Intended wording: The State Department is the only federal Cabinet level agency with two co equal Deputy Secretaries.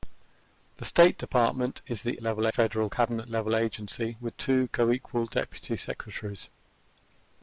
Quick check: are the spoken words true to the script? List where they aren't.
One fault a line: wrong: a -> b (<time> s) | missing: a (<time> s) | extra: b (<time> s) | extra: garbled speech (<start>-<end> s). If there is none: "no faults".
wrong: only -> level (2.2 s)